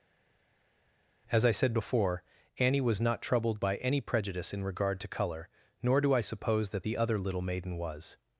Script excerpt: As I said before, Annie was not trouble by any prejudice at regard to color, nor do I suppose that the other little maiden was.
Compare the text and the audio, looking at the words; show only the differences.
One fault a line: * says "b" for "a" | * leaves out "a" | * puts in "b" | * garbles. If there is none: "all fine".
* says "troubled" for "trouble"
* says "in" for "at"